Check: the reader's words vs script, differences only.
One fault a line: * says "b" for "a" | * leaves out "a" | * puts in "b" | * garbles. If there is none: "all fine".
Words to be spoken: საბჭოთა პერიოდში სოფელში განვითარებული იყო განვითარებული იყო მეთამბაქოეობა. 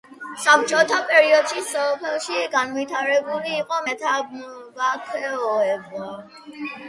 * leaves out "განვითარებული იყო"